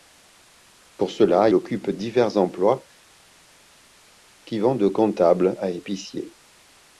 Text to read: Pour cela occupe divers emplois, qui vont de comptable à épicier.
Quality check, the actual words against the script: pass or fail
pass